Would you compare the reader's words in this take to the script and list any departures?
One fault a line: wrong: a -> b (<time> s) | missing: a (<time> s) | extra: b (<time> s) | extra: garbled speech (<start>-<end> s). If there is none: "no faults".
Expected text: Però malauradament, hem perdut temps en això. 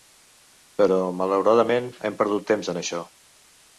no faults